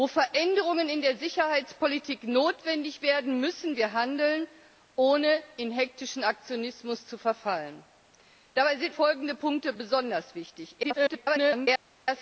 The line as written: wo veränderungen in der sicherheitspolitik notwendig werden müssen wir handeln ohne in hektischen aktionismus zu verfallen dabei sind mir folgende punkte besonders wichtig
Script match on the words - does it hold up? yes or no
no